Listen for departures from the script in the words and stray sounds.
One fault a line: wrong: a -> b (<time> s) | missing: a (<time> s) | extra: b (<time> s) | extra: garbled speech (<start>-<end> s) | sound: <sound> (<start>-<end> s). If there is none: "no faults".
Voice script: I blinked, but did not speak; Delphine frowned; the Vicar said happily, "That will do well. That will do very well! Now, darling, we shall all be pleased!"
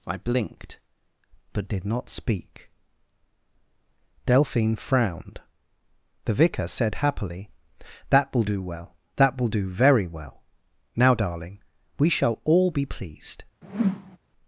sound: whoosh (13.6-14.2 s)